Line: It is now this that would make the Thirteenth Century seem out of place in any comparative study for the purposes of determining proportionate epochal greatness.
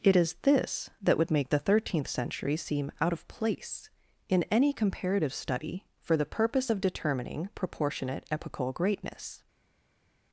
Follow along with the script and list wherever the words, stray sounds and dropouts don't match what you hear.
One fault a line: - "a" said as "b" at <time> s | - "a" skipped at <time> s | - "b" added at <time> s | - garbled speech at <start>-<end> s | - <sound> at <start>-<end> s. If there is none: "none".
- "now" skipped at 0.3 s
- "purposes" said as "purpose" at 6.2 s